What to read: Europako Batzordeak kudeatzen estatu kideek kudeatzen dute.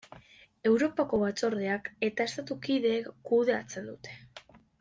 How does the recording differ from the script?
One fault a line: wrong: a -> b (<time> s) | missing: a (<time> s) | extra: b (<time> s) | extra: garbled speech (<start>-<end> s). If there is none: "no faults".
wrong: kudeatzen -> eta (2.1 s)